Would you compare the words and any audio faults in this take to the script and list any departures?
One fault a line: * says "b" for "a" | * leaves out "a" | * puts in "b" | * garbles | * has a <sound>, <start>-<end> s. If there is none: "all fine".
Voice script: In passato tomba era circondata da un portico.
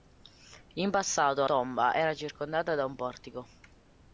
all fine